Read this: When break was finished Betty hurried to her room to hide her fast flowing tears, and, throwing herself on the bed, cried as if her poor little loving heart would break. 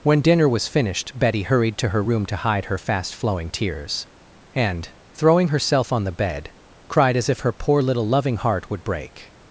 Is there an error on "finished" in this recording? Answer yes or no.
no